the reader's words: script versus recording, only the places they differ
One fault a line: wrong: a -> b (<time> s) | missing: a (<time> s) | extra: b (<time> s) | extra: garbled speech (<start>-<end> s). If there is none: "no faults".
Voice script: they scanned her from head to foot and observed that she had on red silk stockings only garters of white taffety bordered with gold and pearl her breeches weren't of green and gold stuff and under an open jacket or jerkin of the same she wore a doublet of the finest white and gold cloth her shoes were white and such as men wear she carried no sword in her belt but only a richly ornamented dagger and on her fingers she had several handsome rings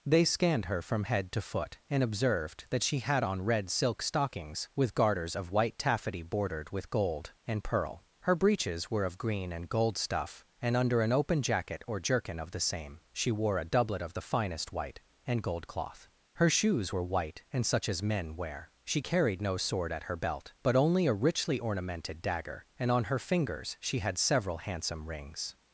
wrong: only -> with (4.8 s)
wrong: weren't -> were (8.9 s)
wrong: in -> at (19.9 s)